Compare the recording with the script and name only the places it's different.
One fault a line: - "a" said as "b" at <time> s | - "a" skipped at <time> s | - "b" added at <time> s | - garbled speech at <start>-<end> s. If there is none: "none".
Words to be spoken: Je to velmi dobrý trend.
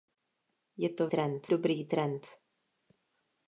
- "velmi" said as "trend" at 1.1 s